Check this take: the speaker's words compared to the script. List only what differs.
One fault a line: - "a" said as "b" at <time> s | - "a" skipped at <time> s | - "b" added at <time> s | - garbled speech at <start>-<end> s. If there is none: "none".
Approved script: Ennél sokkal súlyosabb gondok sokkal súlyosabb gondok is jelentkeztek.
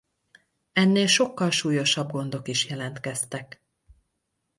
- "sokkal súlyosabb gondok" skipped at 2.5 s